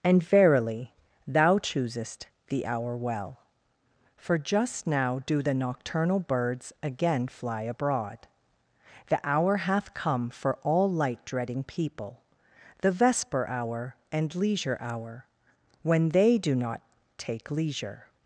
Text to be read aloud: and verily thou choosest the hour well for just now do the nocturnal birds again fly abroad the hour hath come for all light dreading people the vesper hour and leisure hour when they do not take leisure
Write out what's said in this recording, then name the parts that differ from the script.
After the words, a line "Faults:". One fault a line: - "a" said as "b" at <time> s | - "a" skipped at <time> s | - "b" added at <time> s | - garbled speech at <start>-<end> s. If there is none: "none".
and verily thou choosest the hour well for just now do the nocturnal birds again fly abroad the hour hath come for all light dreading people the vesper hour and leisure hour when they do not take leisure
Faults:
none